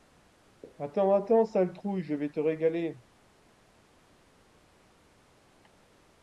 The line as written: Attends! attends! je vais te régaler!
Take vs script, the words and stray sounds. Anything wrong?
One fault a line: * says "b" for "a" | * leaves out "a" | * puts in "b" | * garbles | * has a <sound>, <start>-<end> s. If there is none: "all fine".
* puts in "sale trouille"